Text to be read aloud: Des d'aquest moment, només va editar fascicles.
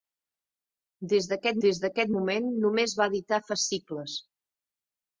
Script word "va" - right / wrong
right